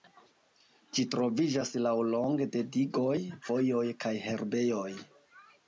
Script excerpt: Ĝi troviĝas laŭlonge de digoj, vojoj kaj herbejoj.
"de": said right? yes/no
yes